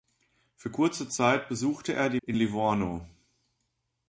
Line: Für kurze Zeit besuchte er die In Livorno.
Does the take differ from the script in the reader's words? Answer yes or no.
no